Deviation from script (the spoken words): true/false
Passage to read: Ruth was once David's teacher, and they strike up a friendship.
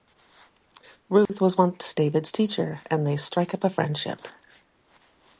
false